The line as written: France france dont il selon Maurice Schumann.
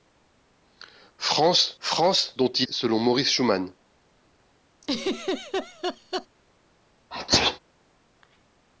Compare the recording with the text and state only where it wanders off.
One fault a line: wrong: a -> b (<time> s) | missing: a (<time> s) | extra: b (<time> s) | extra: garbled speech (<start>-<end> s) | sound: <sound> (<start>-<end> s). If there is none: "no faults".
sound: laugh (4.8-6.3 s)
sound: sneeze (7.1-7.6 s)